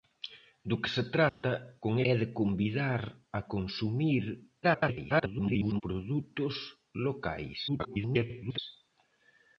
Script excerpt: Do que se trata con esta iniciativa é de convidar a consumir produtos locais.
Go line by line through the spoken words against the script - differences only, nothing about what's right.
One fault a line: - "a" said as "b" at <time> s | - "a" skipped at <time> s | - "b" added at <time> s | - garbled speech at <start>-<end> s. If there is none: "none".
- "esta iniciativa" skipped at 1.9 s
- garbled speech at 4.6-5.8 s
- garbled speech at 7.7-8.6 s